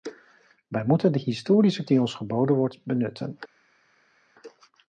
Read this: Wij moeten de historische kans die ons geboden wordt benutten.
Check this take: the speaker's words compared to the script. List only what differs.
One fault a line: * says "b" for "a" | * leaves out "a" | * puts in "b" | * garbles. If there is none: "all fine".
* leaves out "kans"